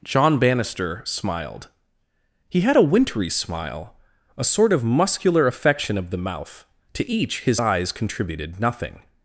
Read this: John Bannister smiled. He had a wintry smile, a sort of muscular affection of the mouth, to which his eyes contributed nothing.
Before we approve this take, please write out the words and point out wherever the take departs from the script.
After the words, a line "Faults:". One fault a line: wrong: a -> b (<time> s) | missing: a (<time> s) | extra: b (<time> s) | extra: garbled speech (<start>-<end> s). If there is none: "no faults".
John Bannister smiled. He had a wintry smile, a sort of muscular affection of the mouth, to each his eyes contributed nothing.
Faults:
wrong: which -> each (7.1 s)